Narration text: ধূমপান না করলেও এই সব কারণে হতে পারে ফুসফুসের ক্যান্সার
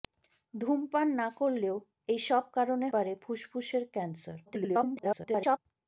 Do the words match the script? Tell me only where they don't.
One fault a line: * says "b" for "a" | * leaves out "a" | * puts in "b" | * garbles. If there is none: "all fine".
* leaves out "হতে"
* garbles